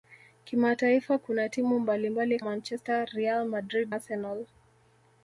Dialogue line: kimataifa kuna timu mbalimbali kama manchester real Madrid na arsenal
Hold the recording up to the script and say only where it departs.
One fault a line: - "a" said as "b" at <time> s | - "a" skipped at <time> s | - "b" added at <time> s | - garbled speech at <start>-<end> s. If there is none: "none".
- "kama" skipped at 2.4 s
- "na" skipped at 3.9 s